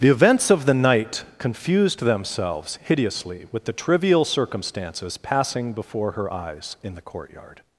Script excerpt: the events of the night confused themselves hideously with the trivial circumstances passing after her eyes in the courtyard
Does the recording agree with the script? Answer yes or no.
no